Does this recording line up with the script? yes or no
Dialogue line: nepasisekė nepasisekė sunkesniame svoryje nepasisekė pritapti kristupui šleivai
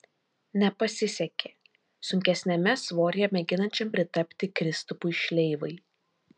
no